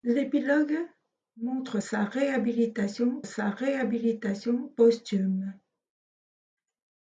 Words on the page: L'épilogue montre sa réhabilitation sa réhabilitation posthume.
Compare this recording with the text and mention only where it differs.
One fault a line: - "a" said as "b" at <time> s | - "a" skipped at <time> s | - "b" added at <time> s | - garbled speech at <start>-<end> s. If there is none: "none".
none